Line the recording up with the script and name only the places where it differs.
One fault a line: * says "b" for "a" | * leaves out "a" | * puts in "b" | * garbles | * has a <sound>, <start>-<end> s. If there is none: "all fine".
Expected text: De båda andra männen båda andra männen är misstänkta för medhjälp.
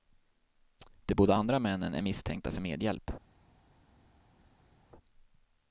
* leaves out "båda andra männen"